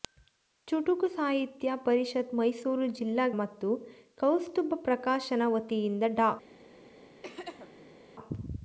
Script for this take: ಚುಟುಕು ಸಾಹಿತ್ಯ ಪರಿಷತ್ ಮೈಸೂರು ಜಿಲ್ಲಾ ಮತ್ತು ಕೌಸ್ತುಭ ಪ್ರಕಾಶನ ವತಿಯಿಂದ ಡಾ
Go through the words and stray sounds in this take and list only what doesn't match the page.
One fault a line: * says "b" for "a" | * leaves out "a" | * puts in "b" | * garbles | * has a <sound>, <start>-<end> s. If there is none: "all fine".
* has a throat clearing, 7.2-8.0 s